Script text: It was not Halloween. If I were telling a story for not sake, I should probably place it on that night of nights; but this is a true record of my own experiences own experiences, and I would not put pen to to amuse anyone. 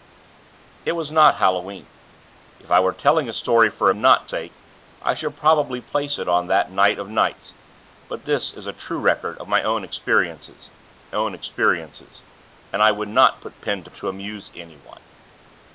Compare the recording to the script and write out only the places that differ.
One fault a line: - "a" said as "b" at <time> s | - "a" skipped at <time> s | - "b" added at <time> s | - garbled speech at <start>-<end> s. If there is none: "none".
none